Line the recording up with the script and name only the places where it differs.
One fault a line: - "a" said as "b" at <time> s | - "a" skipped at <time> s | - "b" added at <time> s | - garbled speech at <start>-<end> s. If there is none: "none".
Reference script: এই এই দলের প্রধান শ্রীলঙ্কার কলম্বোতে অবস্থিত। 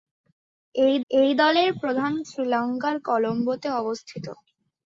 none